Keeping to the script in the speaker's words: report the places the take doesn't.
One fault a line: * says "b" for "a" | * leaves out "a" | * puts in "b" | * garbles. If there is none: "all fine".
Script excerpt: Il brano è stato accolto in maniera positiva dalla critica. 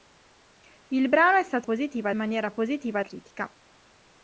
* says "positiva" for "accolto"
* leaves out "dalla"